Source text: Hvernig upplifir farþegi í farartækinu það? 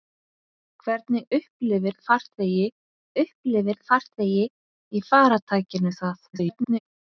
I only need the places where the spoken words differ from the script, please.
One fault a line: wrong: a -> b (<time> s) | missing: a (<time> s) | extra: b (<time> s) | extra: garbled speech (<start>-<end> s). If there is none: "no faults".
extra: upplifir farþegi (3.2 s)
extra: garbled speech (6.3-6.8 s)